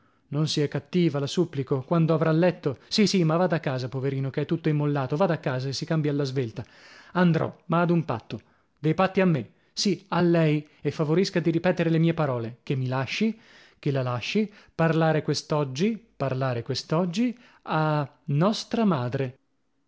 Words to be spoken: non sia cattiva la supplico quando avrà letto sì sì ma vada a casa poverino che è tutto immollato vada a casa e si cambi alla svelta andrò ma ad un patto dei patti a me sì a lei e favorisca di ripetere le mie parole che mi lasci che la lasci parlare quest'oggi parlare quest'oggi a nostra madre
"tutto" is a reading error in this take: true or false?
false